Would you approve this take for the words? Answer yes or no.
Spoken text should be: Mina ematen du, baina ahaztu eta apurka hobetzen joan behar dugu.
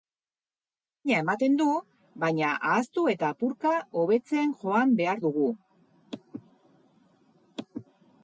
yes